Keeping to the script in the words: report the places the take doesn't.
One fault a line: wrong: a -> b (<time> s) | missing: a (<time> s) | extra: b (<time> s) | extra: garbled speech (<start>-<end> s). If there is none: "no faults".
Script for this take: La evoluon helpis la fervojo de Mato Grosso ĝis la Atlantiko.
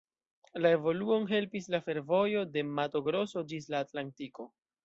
no faults